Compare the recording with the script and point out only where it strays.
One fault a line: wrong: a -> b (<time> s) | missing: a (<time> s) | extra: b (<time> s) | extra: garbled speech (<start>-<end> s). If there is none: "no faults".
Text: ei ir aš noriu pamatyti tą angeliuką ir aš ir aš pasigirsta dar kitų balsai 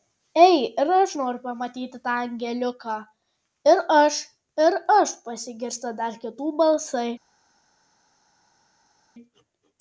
no faults